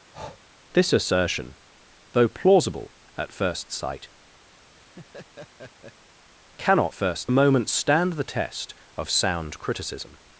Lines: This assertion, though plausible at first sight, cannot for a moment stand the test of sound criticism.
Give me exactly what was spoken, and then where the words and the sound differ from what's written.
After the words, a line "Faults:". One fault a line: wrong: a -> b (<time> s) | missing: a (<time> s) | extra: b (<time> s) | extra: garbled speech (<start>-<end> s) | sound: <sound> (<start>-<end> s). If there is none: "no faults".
This assertion, though plausible at first sight, cannot first a moment stand the test of sound criticism.
Faults:
sound: breath (0.1-0.4 s)
sound: laugh (4.6-6.1 s)
wrong: for -> first (6.9 s)